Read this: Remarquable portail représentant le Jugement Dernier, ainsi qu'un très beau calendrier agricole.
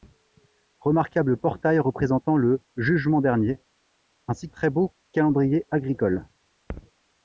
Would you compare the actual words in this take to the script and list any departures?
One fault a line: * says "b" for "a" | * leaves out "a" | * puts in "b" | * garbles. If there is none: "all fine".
* leaves out "qu'un"